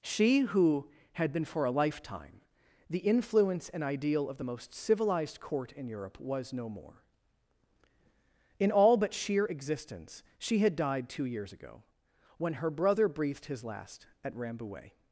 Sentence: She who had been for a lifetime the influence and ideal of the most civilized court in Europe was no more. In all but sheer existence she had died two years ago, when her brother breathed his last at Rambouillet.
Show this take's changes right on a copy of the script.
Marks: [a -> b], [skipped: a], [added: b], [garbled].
She who had been for a lifetime the influence and ideal of the most civilized court in Europe was no more. In all but sheer existence she had died two years ago, when her brother breathed his last at Rambouillet.